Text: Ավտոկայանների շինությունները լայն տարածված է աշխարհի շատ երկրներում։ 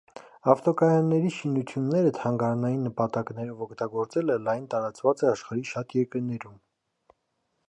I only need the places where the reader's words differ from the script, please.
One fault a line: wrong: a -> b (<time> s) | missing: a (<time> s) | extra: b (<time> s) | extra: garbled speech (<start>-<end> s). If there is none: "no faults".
extra: թանգարանային նպատակներով օգտագործելը (2.2 s)